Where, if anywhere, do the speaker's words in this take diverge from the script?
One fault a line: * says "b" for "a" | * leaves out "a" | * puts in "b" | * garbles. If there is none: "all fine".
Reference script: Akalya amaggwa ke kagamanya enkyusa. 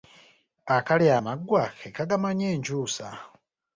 all fine